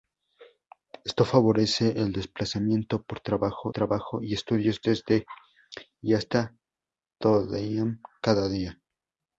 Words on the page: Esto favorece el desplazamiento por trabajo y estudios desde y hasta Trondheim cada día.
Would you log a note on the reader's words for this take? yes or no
yes